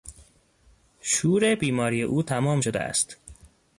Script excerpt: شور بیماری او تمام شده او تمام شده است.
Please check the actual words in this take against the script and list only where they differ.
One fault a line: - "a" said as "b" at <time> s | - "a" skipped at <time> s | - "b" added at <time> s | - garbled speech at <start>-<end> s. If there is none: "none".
- "او تمام شده" skipped at 2.8 s